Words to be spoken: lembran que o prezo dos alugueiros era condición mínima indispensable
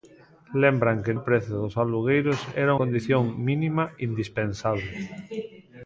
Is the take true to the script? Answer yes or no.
yes